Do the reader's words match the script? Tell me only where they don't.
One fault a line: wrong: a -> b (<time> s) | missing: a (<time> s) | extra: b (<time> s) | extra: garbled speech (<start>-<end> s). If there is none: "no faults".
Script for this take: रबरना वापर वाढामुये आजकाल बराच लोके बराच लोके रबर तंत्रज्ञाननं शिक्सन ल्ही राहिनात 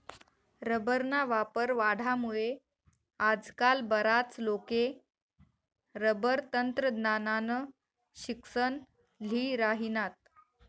missing: बराच लोके (4.8 s)